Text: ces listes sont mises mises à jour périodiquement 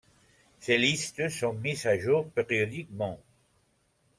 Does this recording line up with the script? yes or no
no